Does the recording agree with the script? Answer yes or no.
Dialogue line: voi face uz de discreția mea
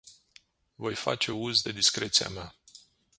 yes